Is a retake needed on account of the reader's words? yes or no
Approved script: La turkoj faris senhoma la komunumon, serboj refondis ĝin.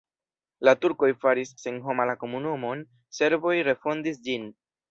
no